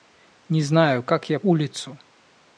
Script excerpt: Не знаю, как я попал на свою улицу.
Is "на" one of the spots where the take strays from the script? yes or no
yes